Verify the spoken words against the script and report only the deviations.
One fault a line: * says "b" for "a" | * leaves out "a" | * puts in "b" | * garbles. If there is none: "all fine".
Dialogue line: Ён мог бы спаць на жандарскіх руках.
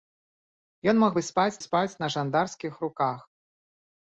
* puts in "спаць"